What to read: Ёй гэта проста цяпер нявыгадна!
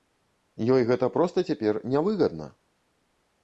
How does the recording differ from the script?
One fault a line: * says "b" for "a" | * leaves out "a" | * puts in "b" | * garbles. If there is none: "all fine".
all fine